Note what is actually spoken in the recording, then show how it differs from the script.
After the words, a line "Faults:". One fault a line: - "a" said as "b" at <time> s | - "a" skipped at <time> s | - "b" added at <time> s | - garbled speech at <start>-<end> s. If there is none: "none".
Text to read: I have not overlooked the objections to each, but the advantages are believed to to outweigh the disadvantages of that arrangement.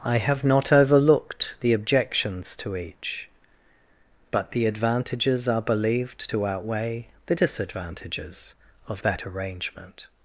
I have not overlooked the objections to each, but the advantages are believed to outweigh the disadvantages of that arrangement.
Faults:
- "to" skipped at 6.5 s